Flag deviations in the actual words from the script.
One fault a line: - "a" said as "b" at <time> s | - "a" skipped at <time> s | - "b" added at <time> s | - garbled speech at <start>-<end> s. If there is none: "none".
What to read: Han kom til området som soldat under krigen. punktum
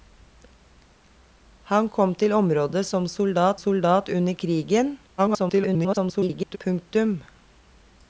- "soldat" added at 3.5 s
- garbled speech at 5.2-6.6 s